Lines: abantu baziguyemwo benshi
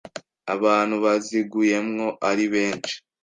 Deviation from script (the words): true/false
true